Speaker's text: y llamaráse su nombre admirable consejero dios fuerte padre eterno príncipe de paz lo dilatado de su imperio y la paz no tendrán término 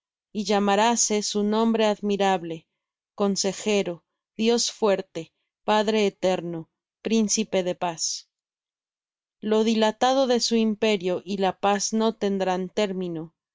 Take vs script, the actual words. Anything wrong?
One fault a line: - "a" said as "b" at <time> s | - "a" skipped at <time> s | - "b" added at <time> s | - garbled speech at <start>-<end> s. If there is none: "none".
none